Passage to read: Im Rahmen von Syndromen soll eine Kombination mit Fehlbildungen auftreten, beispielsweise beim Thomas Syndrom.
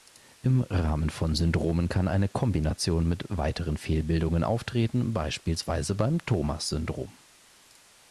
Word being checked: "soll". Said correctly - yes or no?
no